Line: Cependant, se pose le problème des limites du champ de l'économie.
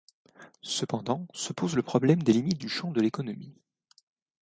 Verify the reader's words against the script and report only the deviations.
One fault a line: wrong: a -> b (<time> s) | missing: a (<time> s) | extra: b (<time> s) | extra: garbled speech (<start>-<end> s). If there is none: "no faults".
no faults